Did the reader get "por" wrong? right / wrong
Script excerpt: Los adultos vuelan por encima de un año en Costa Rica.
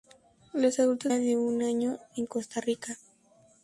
wrong